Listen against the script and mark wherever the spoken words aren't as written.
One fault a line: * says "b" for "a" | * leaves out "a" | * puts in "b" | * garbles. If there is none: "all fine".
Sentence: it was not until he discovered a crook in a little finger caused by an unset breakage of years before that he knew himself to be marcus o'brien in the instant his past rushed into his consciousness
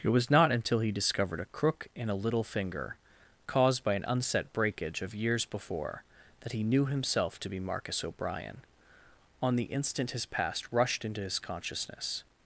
* says "on" for "in"